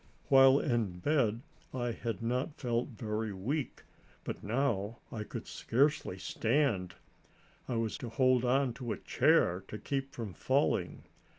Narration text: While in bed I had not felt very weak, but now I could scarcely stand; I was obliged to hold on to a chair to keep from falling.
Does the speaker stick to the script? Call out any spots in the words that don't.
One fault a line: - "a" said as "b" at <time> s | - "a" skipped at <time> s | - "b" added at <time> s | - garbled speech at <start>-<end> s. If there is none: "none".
- "obliged" skipped at 8.0 s